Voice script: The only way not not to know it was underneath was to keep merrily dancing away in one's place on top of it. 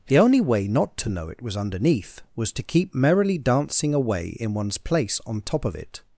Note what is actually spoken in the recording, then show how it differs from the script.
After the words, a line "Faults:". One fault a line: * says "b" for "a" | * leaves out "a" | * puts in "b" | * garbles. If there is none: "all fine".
The only way not to know it was underneath was to keep merrily dancing away in one's place on top of it.
Faults:
* leaves out "not"